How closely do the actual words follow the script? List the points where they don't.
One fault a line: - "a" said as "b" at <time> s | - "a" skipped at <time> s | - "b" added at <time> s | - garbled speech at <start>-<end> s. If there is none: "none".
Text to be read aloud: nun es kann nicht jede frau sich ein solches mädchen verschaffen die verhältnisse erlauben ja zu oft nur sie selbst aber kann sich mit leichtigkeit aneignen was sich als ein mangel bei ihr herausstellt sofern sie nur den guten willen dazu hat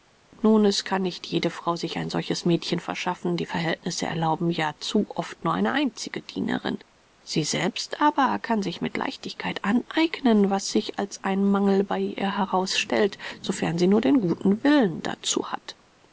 - "eine einzige dienerin" added at 5.5 s